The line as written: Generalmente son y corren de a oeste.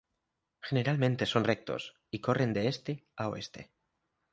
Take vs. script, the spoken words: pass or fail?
fail